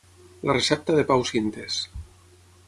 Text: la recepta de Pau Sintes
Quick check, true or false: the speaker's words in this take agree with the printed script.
true